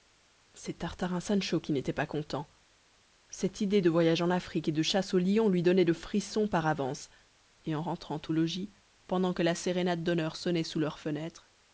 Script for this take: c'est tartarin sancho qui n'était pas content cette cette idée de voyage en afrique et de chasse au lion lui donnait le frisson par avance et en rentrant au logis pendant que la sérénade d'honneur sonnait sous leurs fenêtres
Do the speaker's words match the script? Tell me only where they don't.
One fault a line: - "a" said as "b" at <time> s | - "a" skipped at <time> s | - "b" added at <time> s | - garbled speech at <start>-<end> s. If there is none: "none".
- "cette" skipped at 3.6 s